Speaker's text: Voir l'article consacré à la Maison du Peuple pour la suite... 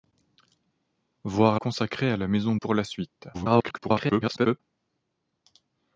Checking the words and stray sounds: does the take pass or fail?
fail